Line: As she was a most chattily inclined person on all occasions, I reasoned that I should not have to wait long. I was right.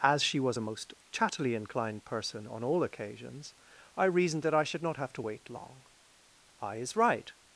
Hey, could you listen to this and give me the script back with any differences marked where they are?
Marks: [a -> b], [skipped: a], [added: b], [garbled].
As she was a most chattily inclined person on all occasions, I reasoned that I should not have to wait long. I [was -> is] right.